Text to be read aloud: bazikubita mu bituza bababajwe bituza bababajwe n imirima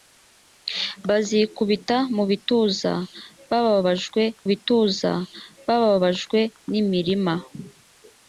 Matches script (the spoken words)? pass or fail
pass